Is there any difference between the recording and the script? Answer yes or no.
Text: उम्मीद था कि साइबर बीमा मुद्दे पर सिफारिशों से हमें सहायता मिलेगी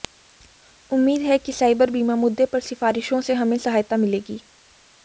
yes